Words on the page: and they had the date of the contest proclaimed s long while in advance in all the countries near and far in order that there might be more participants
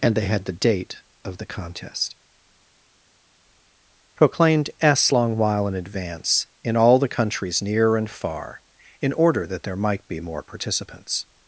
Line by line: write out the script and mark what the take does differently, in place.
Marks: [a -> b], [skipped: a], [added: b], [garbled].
and they had the date of the contest proclaimed s long while in advance in all the countries near and far in order that there might be more participants